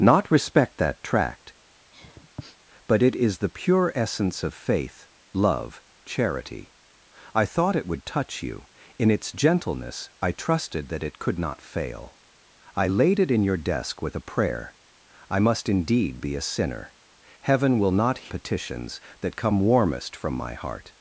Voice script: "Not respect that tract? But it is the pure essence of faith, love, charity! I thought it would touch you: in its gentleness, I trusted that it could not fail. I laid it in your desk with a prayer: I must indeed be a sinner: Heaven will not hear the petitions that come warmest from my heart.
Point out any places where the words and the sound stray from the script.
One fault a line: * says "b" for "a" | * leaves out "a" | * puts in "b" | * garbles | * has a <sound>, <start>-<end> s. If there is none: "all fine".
* has a sniff, 1.9-2.6 s
* leaves out "hear the"